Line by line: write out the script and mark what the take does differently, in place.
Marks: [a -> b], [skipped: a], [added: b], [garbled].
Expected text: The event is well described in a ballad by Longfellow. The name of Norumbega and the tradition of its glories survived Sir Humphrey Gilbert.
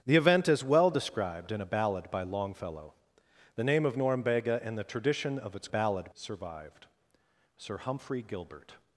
The event is well described in a ballad by Longfellow. The name of Norumbega and the tradition of its [glories -> ballad] survived Sir Humphrey Gilbert.